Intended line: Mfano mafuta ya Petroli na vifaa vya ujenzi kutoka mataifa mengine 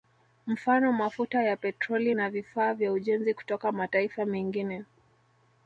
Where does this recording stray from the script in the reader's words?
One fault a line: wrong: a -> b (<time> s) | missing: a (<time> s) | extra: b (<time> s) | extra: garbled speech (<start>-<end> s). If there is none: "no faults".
no faults